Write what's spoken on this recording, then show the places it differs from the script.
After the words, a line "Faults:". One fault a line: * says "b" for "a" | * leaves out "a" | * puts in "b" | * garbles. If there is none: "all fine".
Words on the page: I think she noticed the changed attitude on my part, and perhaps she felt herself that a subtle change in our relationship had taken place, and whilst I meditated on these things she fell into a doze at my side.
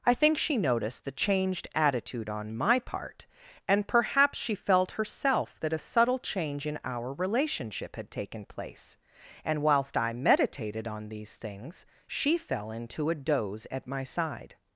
I think she noticed the changed attitude on my part, and perhaps she felt herself that a subtle change in our relationship had taken place, and whilst I meditated on these things she fell into a doze at my side.
Faults:
all fine